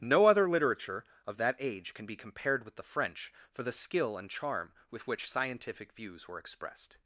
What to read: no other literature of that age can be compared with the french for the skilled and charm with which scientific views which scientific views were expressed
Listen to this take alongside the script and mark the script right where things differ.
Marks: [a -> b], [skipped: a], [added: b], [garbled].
no other literature of that age can be compared with the french for the [skilled -> skill] and charm with which scientific views [skipped: which scientific views] were expressed